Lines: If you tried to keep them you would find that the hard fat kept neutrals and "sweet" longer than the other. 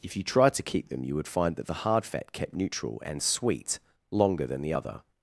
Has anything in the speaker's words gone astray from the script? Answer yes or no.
yes